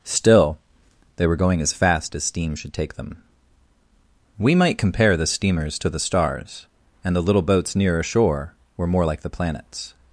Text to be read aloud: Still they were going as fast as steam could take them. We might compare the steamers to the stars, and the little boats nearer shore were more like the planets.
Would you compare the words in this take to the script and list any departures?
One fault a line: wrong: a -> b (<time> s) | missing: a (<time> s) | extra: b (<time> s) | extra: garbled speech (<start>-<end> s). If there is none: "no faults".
wrong: could -> should (2.5 s)